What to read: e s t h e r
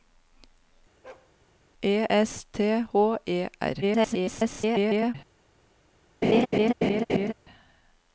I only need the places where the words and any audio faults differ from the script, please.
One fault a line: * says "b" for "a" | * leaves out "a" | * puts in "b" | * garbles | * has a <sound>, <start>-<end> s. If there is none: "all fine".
* has a bark, 1.0-1.3 s
* garbles
* has a laugh, 6.2-7.3 s